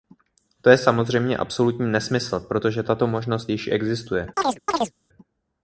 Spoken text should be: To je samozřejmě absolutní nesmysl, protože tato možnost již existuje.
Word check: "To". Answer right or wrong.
right